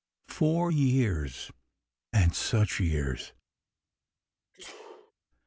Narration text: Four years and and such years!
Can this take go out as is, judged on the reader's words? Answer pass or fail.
fail